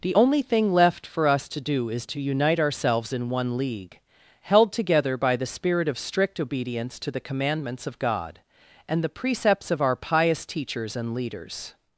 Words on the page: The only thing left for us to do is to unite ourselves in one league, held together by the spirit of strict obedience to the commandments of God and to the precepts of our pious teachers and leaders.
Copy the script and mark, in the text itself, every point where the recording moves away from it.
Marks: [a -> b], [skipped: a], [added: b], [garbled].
The only thing left for us to do is to unite ourselves in one league, held together by the spirit of strict obedience to the commandments of God and [skipped: to] the precepts of our pious teachers and leaders.